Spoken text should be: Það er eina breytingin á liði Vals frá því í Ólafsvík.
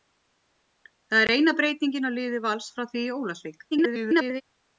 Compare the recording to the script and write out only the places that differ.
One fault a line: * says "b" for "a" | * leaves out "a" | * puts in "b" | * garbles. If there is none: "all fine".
* garbles